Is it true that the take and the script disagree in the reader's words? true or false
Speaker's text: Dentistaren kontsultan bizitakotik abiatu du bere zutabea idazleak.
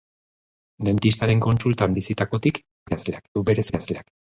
true